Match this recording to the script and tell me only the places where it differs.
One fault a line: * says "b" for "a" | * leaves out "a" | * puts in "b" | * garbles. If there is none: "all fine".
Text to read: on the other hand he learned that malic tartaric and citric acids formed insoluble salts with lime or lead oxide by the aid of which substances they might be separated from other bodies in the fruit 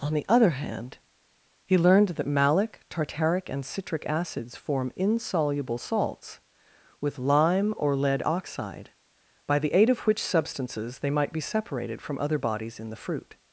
* says "form" for "formed"